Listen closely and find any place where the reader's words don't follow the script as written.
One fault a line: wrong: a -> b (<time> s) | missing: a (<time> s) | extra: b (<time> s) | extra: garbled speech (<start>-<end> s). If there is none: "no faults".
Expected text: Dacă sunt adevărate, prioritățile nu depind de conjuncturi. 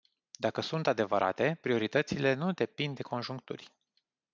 no faults